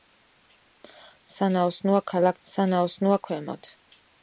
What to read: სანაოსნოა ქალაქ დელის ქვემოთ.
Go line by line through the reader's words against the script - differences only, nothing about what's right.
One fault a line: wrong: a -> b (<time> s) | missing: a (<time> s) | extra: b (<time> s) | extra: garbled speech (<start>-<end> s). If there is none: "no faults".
wrong: დელის -> სანაოსნოა (2.5 s)